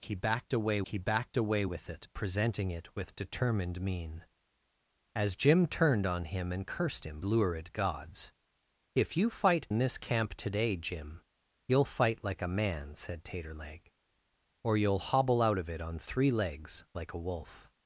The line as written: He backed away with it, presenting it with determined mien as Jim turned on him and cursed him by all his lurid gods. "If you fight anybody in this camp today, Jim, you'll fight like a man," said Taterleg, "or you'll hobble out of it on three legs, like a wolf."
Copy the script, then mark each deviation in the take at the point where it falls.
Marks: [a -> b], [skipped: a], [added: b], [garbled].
He backed away [added: he backed away] with it, presenting it with determined mien as Jim turned on him and cursed him [skipped: by all his] lurid gods. "If you fight [skipped: anybody] in this camp today, Jim, you'll fight like a man," said Taterleg, "or you'll hobble out of it on three legs, like a wolf."